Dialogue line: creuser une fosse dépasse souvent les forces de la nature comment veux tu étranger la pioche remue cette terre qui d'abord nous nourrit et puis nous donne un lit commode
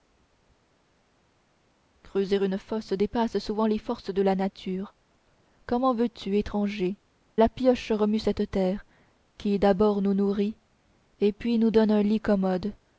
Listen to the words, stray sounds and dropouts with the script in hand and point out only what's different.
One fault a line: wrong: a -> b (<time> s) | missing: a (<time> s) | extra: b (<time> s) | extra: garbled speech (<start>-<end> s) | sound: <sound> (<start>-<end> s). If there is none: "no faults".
no faults